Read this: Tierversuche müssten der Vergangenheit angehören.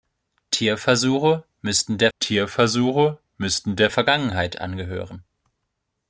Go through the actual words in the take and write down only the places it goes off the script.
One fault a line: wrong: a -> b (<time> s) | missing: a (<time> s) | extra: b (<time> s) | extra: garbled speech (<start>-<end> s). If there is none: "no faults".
extra: tierversuche müssten der (2.2 s)